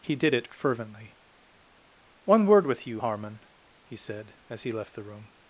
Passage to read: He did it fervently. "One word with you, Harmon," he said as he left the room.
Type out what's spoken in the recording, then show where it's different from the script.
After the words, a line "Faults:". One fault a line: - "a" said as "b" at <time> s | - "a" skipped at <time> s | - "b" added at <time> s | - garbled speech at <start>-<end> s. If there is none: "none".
He did it fervently. "One word with you, Harmon," he said as he left the room.
Faults:
none